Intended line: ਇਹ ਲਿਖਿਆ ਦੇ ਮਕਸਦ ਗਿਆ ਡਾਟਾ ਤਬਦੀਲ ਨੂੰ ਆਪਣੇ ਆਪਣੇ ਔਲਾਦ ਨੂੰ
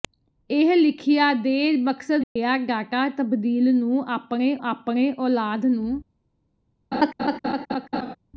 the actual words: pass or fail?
pass